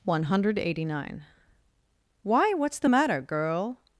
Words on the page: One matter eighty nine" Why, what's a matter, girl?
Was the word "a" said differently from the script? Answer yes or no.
yes